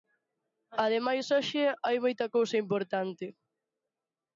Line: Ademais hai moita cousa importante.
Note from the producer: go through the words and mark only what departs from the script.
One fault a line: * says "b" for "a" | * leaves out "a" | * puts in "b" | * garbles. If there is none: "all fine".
* puts in "hoxe"